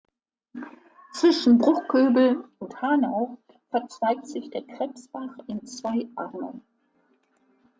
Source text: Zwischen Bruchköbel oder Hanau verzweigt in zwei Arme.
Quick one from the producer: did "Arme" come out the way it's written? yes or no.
yes